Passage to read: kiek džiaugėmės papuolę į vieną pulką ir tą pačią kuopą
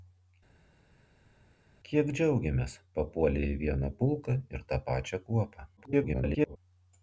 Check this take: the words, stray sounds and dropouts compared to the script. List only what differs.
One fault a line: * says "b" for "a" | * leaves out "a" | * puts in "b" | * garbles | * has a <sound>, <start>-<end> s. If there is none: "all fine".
* garbles